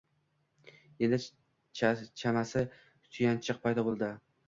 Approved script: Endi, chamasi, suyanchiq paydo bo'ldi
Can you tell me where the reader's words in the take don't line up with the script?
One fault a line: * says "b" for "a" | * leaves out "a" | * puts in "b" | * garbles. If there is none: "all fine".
all fine